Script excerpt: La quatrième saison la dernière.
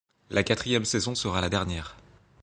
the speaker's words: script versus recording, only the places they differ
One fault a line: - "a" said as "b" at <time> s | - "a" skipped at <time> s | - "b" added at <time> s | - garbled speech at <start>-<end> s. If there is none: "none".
- "sera" added at 1.1 s